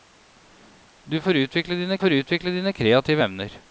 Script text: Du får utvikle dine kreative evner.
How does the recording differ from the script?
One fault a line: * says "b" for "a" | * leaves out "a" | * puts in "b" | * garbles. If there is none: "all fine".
* puts in "får utvikle dine"